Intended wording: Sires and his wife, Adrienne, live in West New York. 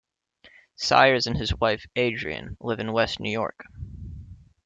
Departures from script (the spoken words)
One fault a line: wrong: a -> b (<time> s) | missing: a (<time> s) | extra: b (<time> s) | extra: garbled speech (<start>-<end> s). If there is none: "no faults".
no faults